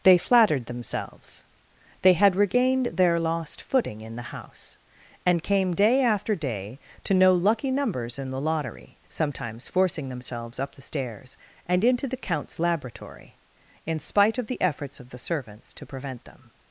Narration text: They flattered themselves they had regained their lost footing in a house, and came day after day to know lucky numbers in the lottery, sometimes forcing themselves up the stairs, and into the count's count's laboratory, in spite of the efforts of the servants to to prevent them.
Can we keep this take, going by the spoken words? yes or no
no